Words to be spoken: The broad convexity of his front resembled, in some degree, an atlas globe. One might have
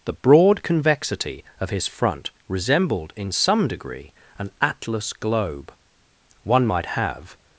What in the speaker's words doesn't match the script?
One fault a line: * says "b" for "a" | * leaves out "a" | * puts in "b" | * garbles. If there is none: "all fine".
all fine